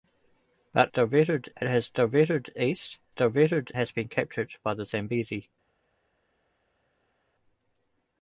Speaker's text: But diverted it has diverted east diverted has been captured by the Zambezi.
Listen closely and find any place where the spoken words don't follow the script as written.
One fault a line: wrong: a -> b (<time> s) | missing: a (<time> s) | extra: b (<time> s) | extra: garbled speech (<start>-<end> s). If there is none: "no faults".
no faults